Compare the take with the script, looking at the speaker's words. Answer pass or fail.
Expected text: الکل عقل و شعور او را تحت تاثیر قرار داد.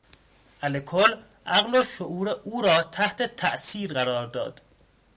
pass